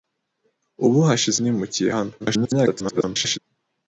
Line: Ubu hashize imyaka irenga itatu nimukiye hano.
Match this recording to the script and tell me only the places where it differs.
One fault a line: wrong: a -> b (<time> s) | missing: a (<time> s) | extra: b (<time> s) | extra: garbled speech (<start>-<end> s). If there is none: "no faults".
missing: imyaka irenga itatu (1.4 s)
extra: garbled speech (2.2-3.4 s)